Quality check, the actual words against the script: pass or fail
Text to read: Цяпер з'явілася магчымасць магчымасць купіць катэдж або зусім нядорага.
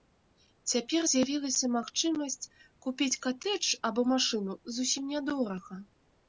fail